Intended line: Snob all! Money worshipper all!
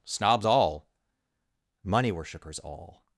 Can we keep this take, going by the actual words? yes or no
no